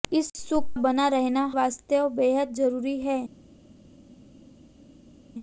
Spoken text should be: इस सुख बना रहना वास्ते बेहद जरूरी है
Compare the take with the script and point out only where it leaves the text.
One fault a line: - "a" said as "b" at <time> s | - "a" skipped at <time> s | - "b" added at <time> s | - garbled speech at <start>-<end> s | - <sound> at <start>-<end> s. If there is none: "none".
none